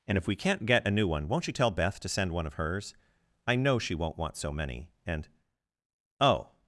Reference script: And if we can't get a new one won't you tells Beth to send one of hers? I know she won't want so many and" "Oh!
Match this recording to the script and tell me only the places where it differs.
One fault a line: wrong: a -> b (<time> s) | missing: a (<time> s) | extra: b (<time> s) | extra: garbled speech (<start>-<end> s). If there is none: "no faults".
wrong: tells -> tell (1.5 s)